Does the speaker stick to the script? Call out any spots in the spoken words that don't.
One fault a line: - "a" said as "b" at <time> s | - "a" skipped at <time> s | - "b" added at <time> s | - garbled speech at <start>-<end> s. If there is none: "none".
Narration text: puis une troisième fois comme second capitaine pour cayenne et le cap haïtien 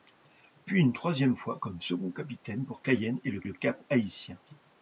- "le" added at 3.4 s